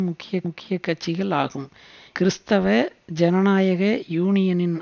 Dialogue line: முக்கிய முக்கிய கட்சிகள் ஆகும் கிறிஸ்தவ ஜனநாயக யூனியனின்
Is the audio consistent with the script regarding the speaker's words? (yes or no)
yes